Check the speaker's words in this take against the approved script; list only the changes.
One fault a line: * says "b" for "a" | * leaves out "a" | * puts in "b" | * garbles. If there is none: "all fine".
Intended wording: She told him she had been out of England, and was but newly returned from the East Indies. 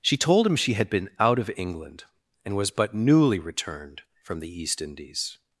all fine